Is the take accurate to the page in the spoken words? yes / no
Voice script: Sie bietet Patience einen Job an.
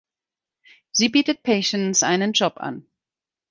yes